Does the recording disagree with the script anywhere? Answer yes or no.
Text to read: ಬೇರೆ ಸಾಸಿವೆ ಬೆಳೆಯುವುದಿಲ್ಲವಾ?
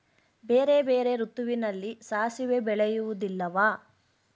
yes